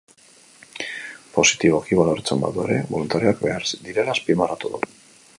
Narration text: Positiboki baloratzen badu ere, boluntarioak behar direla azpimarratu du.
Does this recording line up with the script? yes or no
yes